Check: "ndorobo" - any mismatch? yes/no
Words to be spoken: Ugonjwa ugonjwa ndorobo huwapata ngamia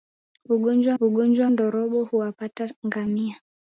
no